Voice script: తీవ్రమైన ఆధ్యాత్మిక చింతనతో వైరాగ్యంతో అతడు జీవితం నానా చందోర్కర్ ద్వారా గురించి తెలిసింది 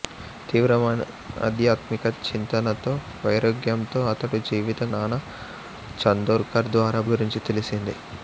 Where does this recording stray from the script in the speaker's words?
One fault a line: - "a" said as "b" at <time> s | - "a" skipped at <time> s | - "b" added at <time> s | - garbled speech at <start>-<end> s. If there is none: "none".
none